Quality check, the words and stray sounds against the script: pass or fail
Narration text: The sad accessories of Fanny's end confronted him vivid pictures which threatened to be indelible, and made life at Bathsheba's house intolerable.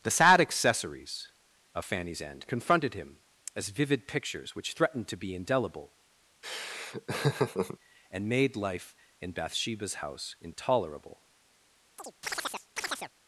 fail